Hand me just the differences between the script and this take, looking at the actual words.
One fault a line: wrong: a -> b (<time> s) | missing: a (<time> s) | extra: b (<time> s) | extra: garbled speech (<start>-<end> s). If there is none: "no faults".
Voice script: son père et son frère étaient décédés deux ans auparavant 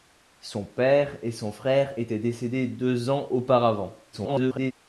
extra: garbled speech (4.1-4.7 s)